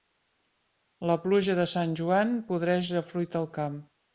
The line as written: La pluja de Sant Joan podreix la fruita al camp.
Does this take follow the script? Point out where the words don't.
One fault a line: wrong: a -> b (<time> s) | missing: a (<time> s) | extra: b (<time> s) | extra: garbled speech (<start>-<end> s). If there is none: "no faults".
no faults